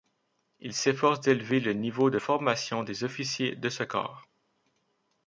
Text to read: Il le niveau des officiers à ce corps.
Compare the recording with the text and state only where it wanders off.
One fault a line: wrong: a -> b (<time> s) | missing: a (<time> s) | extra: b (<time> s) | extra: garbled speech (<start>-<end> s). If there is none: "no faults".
extra: s'efforce d'élever (0.7 s)
extra: de formation (2.1 s)
wrong: à -> de (3.5 s)